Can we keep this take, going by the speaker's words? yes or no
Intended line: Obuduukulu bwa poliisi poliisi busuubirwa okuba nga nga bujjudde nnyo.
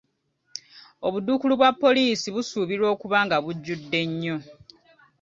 no